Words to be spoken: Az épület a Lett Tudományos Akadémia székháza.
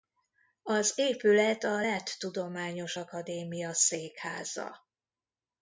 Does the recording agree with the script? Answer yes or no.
yes